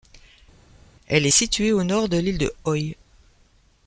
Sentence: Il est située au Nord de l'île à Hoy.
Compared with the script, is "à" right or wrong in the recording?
wrong